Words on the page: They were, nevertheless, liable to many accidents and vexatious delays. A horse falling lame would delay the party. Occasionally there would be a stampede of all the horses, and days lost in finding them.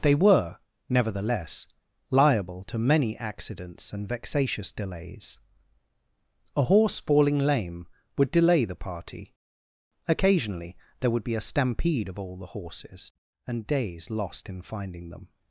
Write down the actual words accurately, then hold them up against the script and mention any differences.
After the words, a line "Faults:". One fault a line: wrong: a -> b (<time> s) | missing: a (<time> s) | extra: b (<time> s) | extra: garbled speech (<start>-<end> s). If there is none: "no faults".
They were, nevertheless, liable to many accidents and vexatious delays. A horse falling lame would delay the party. Occasionally there would be a stampede of all the horses, and days lost in finding them.
Faults:
no faults